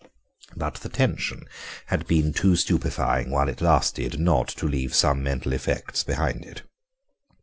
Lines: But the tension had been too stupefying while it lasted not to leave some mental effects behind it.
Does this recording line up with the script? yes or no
yes